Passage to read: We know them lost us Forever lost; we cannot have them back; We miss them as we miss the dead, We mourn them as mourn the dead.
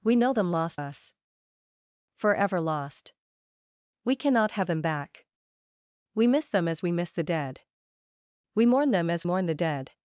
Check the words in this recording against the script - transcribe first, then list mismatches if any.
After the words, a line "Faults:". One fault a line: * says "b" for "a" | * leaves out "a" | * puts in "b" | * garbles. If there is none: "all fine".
We know them lost us Forever lost; we cannot have them back; We miss them as we miss the dead, We mourn them as mourn the dead.
Faults:
all fine